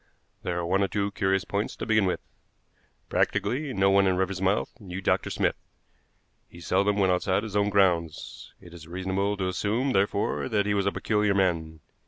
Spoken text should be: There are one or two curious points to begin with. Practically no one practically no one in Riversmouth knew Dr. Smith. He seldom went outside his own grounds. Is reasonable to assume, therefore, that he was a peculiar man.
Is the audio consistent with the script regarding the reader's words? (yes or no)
no